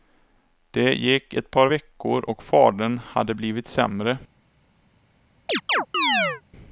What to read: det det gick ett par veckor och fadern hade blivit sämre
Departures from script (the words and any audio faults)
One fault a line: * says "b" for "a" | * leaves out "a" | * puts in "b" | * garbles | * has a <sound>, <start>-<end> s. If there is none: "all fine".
* leaves out "det"
* has a chirp, 5.5-6.4 s